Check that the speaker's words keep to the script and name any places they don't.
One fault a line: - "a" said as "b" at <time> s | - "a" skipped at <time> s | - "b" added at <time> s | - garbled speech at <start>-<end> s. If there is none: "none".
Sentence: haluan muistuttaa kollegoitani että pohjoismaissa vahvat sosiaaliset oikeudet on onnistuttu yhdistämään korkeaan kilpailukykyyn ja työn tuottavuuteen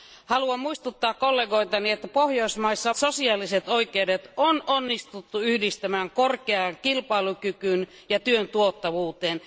- "vahvat" skipped at 2.9 s